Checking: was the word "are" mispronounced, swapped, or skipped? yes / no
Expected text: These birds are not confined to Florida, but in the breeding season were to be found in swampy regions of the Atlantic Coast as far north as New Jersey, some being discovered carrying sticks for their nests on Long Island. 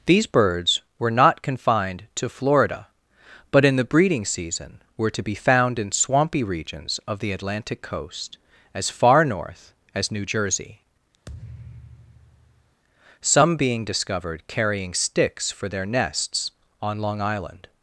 yes